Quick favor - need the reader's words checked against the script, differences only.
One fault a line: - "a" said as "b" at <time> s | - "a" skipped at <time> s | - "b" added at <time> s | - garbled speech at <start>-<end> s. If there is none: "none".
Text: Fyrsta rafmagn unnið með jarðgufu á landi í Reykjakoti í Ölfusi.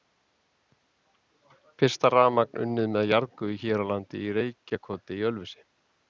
- "hér" added at 3.6 s